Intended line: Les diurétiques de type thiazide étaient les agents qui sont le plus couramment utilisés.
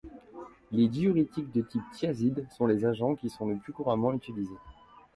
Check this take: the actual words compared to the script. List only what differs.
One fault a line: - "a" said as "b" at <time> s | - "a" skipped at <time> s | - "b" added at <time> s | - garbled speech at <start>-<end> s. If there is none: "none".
- "étaient" said as "sont" at 2.5 s